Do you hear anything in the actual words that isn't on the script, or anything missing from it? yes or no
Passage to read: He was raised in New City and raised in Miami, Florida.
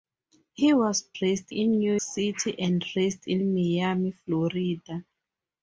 no